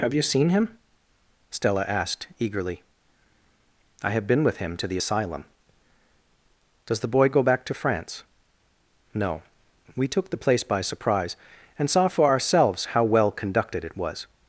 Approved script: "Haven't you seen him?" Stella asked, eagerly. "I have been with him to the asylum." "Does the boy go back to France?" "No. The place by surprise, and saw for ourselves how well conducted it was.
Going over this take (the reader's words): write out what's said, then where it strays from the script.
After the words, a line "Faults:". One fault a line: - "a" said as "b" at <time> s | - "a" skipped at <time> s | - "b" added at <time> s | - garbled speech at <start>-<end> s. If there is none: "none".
"Have you seen him?" Stella asked, eagerly. "I have been with him to the asylum." "Does the boy go back to France?" "No. We took the place by surprise, and saw for ourselves how well conducted it was.
Faults:
- "Haven't" said as "Have" at 0.0 s
- "We took" added at 9.9 s